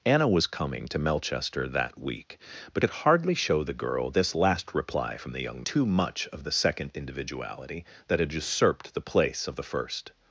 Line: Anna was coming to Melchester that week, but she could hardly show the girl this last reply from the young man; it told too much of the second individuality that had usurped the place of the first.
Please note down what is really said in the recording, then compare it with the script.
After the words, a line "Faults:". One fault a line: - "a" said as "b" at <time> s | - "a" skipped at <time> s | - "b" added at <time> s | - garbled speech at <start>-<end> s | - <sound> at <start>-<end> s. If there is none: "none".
Anna was coming to Melchester that week, but could hardly show the girl this last reply from the young too much of the second individuality that had usurped the place of the first.
Faults:
- "she" skipped at 2.8 s
- "man it told" skipped at 5.6 s